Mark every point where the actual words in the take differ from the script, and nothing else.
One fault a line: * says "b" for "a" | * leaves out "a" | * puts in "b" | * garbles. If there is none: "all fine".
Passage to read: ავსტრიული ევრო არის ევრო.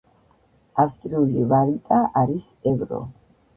* says "ვალუტა" for "ევრო"